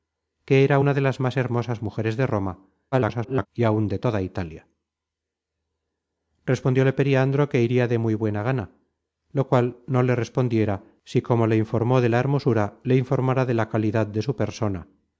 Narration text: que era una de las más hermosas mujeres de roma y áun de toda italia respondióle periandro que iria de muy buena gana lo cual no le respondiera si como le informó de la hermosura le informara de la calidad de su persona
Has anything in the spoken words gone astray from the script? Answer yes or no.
yes